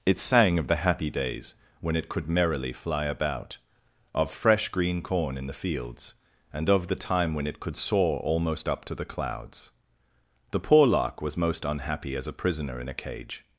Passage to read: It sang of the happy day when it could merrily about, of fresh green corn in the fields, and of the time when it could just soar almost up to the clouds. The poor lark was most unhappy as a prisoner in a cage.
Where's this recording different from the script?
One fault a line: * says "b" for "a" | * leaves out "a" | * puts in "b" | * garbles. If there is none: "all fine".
* says "days" for "day"
* puts in "fly"
* leaves out "just"